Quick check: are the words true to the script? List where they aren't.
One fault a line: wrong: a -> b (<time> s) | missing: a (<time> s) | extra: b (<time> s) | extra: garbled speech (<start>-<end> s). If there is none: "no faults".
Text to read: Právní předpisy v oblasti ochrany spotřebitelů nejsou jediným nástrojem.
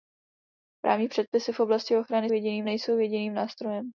wrong: spotřebitelů -> jediným (2.3 s)